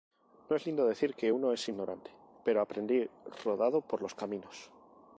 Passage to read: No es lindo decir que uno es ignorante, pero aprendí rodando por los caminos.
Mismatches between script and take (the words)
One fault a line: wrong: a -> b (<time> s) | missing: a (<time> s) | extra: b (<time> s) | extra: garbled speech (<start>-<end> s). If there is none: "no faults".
no faults